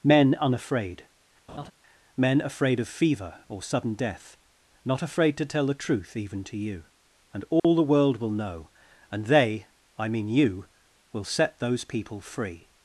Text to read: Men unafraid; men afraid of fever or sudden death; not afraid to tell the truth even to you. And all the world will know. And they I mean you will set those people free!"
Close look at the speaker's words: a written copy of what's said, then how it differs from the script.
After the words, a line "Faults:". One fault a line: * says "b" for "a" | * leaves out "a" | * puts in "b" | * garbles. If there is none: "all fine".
Men unafraid; men afraid of fever or sudden death; not afraid to tell the truth even to you. And all the world will know. And they I mean you will set those people free!"
Faults:
all fine